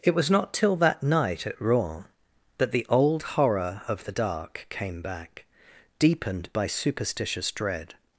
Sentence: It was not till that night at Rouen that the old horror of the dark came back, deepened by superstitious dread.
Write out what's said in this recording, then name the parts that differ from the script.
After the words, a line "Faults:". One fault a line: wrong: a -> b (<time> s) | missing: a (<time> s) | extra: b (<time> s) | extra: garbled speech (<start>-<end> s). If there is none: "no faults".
It was not till that night at Rouen that the old horror of the dark came back, deepened by superstitious dread.
Faults:
no faults